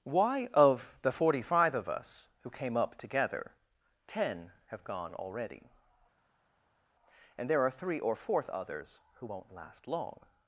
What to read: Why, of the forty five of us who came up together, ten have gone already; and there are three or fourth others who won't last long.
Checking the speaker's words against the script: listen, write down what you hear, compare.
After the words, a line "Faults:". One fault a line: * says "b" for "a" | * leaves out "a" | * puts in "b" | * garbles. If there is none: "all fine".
Why, of the forty five of us who came up together, ten have gone already; and there are three or fourth others who won't last long.
Faults:
all fine